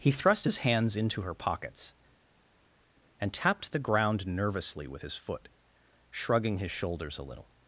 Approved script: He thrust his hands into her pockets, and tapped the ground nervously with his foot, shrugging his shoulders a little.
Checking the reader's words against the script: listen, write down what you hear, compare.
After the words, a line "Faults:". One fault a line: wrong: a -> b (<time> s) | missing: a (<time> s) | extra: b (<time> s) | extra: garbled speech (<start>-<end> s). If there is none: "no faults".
He thrust his hands into her pockets, and tapped the ground nervously with his foot, shrugging his shoulders a little.
Faults:
no faults